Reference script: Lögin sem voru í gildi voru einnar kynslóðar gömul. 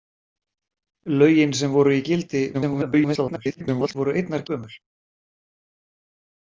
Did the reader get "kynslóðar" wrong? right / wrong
wrong